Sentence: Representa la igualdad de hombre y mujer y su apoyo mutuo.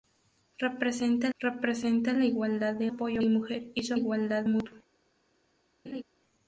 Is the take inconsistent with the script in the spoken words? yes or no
yes